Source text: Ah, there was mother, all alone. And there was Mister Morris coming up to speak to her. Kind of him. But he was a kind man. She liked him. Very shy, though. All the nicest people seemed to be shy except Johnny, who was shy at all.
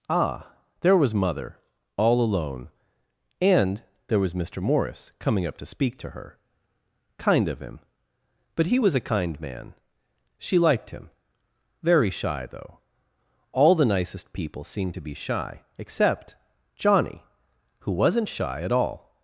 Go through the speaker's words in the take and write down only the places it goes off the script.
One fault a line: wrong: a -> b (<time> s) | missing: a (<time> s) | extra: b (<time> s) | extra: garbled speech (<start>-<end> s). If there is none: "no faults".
wrong: was -> wasn't (17.9 s)